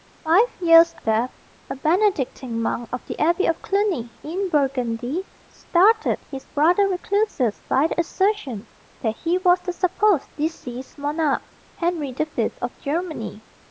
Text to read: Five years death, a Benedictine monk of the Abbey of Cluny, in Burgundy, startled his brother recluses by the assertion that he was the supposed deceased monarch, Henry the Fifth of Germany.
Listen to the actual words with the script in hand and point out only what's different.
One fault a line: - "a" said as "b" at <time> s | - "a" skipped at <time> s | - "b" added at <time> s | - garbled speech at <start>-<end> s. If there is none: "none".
none